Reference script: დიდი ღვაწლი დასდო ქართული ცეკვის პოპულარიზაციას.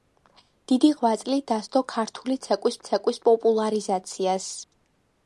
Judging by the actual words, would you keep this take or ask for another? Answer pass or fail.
fail